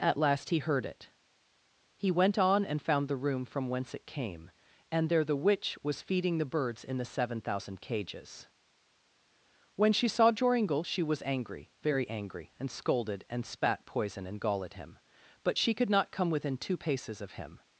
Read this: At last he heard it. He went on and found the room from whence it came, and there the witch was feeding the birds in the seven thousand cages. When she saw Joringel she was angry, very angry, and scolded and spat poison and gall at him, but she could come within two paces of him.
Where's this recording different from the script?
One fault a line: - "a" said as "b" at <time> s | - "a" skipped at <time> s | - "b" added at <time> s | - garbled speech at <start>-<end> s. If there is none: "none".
- "not" added at 15.9 s